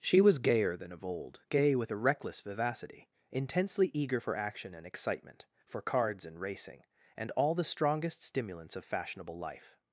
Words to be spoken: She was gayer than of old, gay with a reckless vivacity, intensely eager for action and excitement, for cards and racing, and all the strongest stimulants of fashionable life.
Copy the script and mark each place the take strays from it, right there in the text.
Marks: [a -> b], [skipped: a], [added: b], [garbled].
She was gayer than of old, gay with a reckless vivacity, intensely eager for action and excitement, for cards and racing, and all the strongest stimulants of fashionable life.